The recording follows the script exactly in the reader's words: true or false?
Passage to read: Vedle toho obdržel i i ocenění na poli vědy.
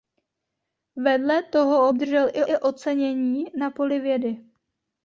true